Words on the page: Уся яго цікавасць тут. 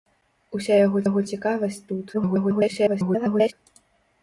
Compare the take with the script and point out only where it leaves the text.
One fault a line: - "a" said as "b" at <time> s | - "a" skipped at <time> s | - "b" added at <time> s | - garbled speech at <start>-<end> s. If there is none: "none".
- "яго" added at 1.1 s
- garbled speech at 2.1-3.5 s